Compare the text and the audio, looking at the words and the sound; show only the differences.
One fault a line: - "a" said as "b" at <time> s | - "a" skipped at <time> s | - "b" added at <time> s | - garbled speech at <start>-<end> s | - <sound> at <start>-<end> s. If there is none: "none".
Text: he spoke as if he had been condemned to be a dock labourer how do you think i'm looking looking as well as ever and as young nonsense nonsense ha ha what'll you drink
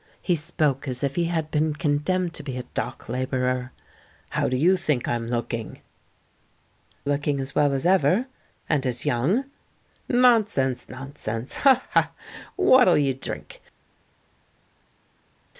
none